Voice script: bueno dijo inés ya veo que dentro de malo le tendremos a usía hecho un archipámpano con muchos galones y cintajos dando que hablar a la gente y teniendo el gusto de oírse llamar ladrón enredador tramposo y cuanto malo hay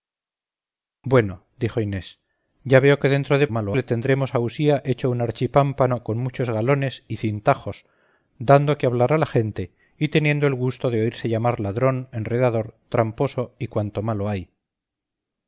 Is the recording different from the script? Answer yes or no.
no